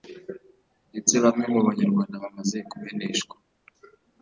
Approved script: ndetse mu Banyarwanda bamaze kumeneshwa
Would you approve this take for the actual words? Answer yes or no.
no